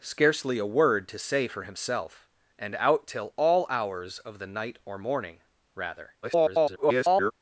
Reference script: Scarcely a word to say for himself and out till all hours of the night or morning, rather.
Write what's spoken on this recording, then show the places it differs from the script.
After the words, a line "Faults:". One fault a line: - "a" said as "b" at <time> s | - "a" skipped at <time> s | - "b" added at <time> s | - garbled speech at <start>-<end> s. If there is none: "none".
Scarcely a word to say for himself and out till all hours of the night or morning, rather. [garbled]
Faults:
- garbled speech at 6.2-7.3 s